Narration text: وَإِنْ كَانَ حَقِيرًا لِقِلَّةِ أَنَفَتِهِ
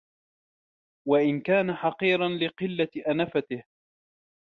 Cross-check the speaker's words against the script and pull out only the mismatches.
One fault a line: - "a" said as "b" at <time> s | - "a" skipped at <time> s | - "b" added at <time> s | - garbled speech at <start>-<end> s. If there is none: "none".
none